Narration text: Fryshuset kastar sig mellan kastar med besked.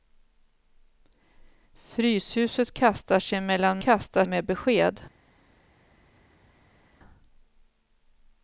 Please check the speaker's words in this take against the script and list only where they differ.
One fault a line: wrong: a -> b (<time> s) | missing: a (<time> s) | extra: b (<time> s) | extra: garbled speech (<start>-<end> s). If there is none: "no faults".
no faults